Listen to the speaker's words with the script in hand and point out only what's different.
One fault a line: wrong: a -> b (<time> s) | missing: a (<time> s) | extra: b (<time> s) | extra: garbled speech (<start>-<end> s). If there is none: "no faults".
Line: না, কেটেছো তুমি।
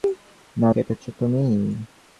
no faults